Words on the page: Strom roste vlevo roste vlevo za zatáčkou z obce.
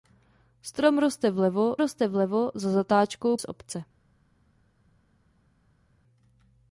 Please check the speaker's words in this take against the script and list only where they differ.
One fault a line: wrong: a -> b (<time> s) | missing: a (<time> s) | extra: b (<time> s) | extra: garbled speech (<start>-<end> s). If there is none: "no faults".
no faults